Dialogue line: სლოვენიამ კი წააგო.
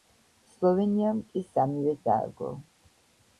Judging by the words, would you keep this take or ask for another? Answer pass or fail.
fail